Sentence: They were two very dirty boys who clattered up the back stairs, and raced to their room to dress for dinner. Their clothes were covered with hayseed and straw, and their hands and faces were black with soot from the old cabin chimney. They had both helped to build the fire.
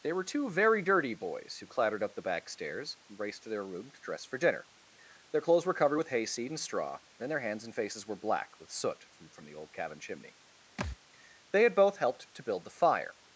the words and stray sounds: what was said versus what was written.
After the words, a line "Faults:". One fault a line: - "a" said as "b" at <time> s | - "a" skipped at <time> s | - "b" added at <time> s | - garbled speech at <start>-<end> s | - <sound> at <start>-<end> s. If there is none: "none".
They were two very dirty boys who clattered up the back stairs, and raced to their room to dress for dinner. Their clothes were covered with hayseed and straw, and their hands and faces were black with soot from from the old cabin chimney. They had both helped to build the fire.
Faults:
- "from" added at 9.3 s
- thud at 10.8-11.0 s